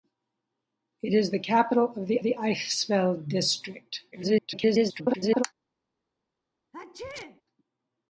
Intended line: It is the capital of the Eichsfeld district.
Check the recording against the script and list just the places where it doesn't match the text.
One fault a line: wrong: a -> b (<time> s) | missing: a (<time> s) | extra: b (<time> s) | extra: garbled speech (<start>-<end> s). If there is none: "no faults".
extra: the (2.2 s)
extra: garbled speech (4.1-5.4 s)